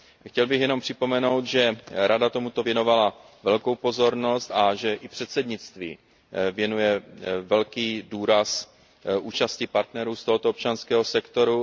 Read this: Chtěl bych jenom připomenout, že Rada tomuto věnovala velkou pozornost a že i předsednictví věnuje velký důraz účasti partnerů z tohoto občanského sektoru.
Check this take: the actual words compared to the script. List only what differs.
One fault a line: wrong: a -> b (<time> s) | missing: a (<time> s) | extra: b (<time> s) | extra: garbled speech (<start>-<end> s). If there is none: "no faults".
no faults